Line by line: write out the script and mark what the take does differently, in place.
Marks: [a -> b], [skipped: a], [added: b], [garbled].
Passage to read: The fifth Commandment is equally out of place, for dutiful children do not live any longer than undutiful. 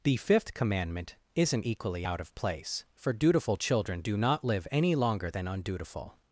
The fifth Commandment [is -> isn't] equally out of place, for dutiful children do not live any longer than undutiful.